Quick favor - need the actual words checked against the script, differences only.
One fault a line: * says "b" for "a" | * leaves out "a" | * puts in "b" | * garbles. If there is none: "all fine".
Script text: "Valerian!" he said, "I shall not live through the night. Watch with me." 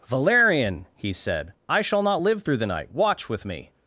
all fine